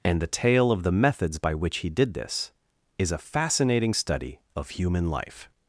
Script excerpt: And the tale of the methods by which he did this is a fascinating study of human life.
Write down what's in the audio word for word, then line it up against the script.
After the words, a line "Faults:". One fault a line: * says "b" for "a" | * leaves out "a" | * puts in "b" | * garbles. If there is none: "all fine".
And the tale of the methods by which he did this is a fascinating study of human life.
Faults:
all fine